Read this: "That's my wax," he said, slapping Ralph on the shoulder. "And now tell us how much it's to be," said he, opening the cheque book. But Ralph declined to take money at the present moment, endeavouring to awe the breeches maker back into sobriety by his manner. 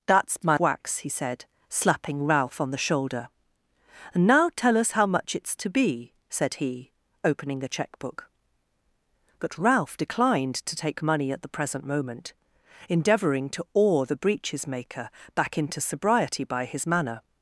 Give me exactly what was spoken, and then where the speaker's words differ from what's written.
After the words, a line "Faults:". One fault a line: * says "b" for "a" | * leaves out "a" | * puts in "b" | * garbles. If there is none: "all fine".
"That's my wax," he said, slapping Ralph on the shoulder. "And now tell us how much it's to be," said he, opening the cheque book. But Ralph declined to take money at the present moment, endeavouring to awe the breeches maker back into sobriety by his manner.
Faults:
all fine